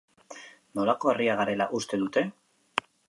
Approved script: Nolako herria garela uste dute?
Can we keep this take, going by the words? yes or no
yes